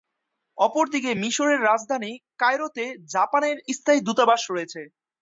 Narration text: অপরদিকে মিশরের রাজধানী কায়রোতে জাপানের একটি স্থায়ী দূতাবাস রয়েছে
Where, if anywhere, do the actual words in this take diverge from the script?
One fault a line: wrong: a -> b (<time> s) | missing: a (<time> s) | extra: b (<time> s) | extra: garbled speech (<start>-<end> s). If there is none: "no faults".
missing: একটি (3.6 s)